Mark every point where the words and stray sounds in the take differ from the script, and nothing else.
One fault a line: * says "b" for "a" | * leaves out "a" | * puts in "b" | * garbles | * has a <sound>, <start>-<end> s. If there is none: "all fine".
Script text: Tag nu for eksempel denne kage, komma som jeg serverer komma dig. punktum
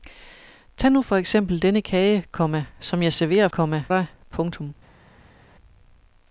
all fine